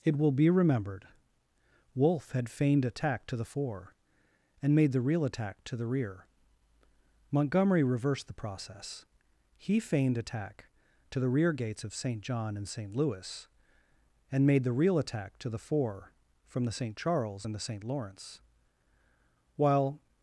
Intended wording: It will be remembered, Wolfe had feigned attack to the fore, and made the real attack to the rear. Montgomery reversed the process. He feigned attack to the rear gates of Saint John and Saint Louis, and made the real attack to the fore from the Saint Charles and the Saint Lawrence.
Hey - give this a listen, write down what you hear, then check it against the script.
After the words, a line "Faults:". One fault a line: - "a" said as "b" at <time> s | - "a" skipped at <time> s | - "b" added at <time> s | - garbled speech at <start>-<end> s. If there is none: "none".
It will be remembered, Wolfe had feigned attack to the fore, and made the real attack to the rear. Montgomery reversed the process. He feigned attack to the rear gates of Saint John and Saint Louis, and made the real attack to the fore from the Saint Charles and the Saint Lawrence. While
Faults:
- "While" added at 19.6 s